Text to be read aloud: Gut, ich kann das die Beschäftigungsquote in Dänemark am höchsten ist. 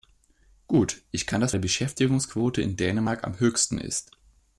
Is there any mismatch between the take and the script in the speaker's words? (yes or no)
no